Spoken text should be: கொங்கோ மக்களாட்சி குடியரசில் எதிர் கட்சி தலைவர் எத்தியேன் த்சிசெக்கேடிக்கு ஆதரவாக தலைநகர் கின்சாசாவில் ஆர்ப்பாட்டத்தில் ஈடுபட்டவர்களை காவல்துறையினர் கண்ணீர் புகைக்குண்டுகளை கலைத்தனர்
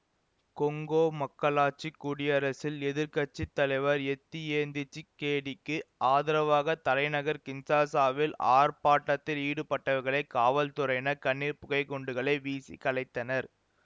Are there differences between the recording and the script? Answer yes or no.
yes